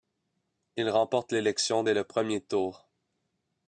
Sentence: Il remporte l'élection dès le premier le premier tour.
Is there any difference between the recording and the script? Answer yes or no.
yes